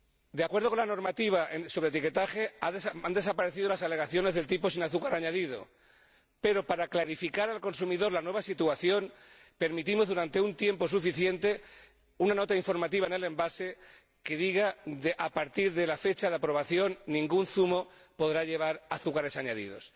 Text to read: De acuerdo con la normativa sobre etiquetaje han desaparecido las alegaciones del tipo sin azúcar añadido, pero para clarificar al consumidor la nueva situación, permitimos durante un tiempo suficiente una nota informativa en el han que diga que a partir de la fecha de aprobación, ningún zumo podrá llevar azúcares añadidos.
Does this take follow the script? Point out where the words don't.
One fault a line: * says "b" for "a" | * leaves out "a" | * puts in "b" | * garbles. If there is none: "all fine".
* says "envase" for "han"